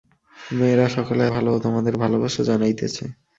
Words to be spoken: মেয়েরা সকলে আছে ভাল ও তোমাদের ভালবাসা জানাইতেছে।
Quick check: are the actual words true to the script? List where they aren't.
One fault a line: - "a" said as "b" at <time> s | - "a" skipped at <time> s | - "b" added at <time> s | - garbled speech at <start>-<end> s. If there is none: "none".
- "আছে" skipped at 1.2 s